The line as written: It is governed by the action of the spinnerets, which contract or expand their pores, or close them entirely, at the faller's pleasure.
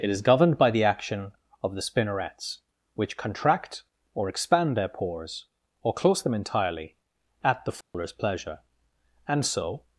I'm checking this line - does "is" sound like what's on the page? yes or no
yes